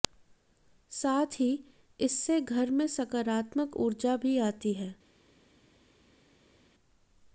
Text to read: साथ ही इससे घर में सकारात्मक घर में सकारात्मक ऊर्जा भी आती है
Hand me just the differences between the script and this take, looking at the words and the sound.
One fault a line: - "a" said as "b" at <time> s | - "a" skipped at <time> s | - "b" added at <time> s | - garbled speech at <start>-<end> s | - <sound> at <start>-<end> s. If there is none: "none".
- "घर में सकारात्मक" skipped at 3.8 s